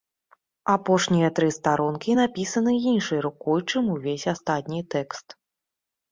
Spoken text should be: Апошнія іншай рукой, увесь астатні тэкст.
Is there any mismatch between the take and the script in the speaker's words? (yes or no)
yes